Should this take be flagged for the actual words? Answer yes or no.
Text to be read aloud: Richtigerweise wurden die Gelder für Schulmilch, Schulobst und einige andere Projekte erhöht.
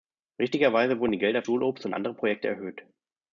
yes